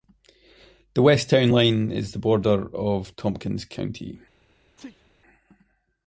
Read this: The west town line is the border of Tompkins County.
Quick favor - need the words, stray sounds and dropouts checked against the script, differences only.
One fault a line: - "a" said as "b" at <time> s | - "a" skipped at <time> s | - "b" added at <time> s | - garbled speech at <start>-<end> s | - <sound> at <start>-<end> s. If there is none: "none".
- sneeze at 4.8-5.1 s